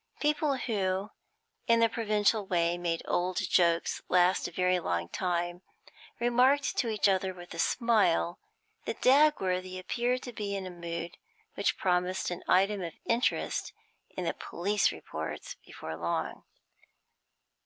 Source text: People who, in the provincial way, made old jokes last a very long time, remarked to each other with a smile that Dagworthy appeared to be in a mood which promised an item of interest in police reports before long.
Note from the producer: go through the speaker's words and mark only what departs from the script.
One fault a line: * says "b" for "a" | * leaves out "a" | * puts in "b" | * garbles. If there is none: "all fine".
* puts in "the"